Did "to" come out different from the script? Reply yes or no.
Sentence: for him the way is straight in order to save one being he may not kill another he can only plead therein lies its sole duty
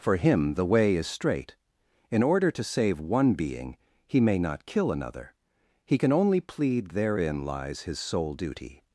no